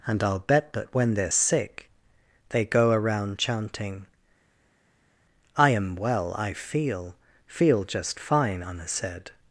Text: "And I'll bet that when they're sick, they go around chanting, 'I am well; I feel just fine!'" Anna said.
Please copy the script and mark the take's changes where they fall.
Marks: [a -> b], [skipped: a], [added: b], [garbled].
"And I'll bet that when they're sick, they go around chanting, 'I am well; I feel [added: feel] just fine!'" Anna said.